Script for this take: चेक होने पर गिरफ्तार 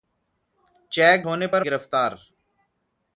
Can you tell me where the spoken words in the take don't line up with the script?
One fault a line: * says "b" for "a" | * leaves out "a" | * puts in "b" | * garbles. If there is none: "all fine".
all fine